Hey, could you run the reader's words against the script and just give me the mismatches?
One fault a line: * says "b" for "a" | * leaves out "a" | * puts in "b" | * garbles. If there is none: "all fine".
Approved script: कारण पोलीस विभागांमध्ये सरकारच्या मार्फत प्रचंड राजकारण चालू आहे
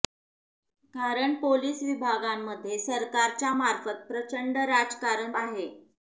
* leaves out "चालू"